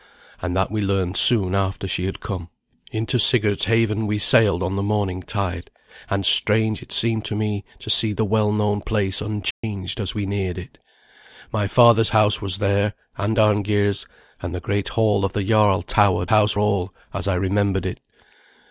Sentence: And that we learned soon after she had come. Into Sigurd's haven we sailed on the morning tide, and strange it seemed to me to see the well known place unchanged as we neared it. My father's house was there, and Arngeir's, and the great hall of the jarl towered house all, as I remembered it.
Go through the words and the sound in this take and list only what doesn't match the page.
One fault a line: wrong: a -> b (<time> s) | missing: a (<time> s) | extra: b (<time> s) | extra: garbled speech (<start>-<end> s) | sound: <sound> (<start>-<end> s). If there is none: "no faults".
sound: dropout (9.5-9.6 s)